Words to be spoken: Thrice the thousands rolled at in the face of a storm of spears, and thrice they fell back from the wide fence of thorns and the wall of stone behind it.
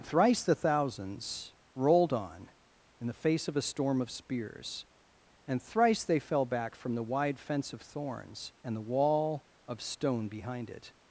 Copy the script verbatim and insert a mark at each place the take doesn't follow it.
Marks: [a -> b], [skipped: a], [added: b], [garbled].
Thrice the thousands rolled [at -> on] in the face of a storm of spears, and thrice they fell back from the wide fence of thorns and the wall of stone behind it.